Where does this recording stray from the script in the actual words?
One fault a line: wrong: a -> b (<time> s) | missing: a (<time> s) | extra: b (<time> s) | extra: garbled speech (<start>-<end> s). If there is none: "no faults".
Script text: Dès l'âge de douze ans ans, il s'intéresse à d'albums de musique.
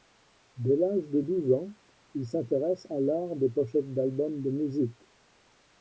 missing: ans (1.7 s)
extra: l'art des pochettes (3.0 s)